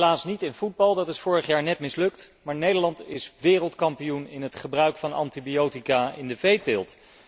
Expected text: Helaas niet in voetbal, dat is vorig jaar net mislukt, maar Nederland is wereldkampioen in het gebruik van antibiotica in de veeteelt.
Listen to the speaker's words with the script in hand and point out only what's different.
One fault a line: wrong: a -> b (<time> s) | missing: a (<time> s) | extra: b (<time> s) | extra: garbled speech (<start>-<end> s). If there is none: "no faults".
no faults